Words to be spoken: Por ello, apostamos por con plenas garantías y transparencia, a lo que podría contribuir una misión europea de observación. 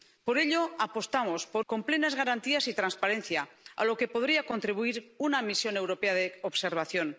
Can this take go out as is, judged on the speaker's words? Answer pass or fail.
pass